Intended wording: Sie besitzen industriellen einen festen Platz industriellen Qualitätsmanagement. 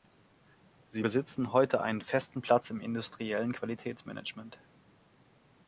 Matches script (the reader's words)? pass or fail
fail